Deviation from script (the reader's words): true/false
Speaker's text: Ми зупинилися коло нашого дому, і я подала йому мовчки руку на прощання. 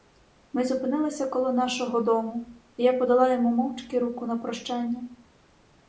false